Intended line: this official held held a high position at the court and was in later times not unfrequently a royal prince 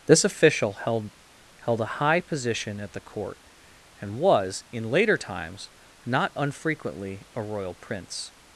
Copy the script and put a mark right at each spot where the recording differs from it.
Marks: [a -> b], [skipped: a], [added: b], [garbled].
this official held held a high position at the court and was in later times not unfrequently a royal prince